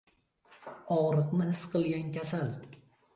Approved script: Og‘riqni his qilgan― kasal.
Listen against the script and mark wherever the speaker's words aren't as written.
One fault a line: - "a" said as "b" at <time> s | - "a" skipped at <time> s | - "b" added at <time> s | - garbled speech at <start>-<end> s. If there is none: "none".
none